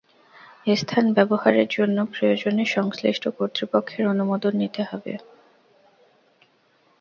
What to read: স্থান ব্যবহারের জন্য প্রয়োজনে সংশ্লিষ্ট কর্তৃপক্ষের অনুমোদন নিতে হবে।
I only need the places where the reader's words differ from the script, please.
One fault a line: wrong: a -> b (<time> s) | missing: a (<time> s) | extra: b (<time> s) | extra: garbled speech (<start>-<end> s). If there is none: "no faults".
no faults